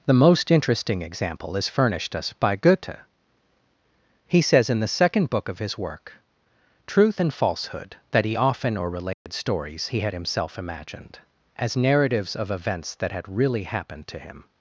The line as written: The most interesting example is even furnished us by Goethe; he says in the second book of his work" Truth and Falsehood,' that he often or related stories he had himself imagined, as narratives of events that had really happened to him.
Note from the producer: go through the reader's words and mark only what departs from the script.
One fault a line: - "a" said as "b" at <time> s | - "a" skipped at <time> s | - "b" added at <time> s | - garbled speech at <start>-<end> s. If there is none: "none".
- "even" skipped at 1.7 s